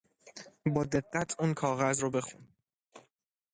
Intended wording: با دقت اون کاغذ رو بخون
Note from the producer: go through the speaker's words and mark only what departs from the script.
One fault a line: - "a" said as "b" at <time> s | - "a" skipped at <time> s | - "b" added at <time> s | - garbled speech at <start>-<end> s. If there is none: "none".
none